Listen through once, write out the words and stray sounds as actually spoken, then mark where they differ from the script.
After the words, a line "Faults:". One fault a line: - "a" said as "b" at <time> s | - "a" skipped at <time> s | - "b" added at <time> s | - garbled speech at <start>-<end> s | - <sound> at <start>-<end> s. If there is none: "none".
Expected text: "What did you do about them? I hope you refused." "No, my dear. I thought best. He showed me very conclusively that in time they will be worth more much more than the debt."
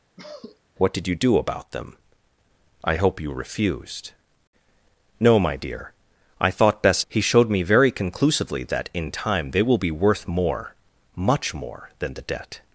"What did you do about them? I hope you refused." "No, my dear. I thought best. He showed me very conclusively that in time they will be worth more much more than the debt."
Faults:
- cough at 0.2-0.6 s